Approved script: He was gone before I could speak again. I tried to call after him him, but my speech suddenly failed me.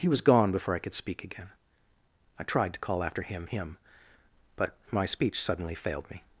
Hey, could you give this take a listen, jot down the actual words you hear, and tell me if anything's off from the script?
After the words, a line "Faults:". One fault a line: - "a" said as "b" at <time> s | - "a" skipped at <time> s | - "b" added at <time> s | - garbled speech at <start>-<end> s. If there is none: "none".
He was gone before I could speak again. I tried to call after him him, but my speech suddenly failed me.
Faults:
none